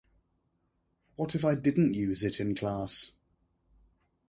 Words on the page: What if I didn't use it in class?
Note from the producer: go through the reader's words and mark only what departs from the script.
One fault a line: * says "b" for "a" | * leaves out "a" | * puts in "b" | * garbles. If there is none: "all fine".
all fine